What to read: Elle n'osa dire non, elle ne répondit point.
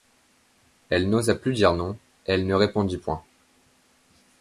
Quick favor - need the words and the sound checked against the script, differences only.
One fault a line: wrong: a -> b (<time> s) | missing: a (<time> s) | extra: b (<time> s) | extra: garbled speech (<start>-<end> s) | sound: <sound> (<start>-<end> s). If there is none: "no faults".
extra: plus (1.4 s)